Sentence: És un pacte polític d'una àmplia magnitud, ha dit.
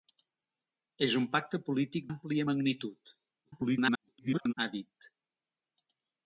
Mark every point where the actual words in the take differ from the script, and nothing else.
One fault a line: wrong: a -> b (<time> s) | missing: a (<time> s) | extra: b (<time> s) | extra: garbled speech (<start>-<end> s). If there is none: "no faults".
missing: d'una (2.1 s)
extra: garbled speech (3.4-4.5 s)